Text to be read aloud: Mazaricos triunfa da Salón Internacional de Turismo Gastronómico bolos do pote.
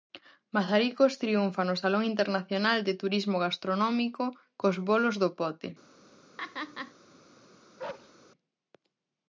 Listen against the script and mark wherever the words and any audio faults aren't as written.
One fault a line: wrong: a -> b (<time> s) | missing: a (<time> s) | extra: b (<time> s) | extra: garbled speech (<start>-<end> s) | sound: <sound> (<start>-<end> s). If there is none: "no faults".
wrong: da -> no (1.6 s)
extra: cos (4.6 s)
sound: laugh (6.4-6.9 s)
sound: bark (7.8-8.1 s)